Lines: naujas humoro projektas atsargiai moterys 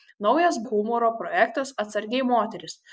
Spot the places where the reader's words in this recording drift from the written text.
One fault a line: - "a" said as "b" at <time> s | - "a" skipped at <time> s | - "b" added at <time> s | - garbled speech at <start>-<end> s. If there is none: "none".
none